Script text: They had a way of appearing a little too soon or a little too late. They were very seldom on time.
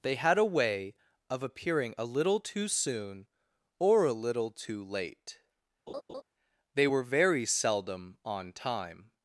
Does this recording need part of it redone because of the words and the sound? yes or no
yes